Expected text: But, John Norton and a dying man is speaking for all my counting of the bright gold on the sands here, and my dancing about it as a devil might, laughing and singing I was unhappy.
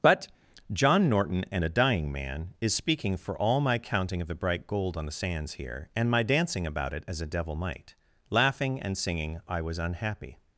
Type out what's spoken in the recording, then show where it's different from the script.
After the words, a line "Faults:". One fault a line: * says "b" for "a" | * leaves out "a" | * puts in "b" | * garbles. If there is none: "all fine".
But, John Norton and a dying man is speaking for all my counting of the bright gold on the sands here, and my dancing about it as a devil might, laughing and singing I was unhappy.
Faults:
all fine